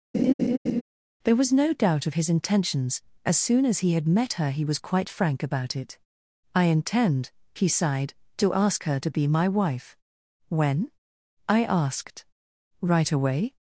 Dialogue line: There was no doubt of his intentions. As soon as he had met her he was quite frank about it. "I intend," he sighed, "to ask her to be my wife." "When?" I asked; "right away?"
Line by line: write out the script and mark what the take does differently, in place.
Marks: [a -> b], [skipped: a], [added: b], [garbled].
There was no doubt of his intentions. As soon as he had met her he was quite frank about it. "I intend," he sighed, "to ask her to be my wife." "When?" I asked; "right away?"